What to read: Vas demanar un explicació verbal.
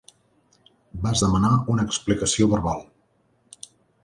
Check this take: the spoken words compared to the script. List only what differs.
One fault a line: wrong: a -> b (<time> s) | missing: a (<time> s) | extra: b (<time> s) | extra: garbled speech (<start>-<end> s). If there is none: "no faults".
wrong: un -> una (1.7 s)